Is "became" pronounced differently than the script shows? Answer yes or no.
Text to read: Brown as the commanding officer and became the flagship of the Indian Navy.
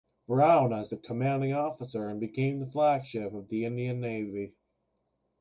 no